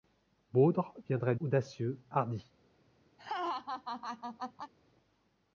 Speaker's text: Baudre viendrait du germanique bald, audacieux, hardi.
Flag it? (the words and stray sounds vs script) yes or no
yes